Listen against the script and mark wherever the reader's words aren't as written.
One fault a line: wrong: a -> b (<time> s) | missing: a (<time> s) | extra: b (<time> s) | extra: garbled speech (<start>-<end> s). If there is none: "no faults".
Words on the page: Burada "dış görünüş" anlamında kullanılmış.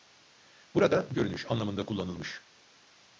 missing: dış (1.1 s)